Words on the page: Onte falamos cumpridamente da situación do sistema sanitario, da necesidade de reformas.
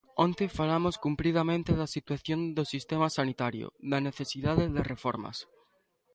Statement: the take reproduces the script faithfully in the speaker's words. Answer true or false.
true